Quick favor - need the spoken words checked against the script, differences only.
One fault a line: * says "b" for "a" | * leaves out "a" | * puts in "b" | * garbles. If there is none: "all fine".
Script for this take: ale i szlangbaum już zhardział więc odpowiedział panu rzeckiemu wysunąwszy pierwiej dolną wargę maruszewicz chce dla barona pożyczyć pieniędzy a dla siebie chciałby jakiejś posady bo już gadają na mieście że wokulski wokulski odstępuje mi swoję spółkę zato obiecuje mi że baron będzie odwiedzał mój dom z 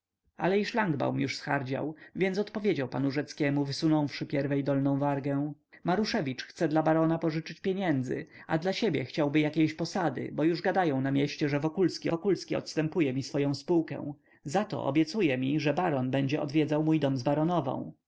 all fine